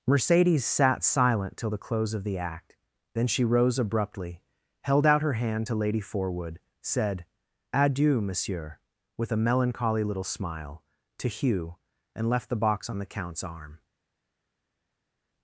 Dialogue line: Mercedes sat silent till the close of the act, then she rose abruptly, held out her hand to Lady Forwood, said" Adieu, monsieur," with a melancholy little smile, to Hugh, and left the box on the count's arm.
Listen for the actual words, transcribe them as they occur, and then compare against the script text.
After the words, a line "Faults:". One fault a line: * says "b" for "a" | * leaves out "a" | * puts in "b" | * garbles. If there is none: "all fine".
Mercedes sat silent till the close of the act, then she rose abruptly, held out her hand to Lady Forwood, said" Adieu, monsieur," with a melancholy little smile, to Hugh, and left the box on the count's arm.
Faults:
all fine